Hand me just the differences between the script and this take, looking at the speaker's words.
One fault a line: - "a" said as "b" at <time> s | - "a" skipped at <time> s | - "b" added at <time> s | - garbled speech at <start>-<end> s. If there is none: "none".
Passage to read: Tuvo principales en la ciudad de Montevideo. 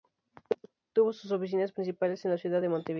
- "sus oficinas" added at 1.1 s